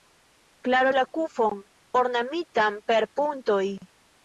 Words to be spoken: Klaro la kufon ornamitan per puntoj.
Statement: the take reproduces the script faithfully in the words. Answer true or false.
true